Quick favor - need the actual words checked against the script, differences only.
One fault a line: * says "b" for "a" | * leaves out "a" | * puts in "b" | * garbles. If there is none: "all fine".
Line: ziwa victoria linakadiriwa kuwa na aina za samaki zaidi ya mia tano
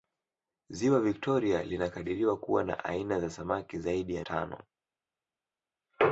* leaves out "mia"